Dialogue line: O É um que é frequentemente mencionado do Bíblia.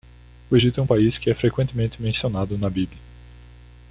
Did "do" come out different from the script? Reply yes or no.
yes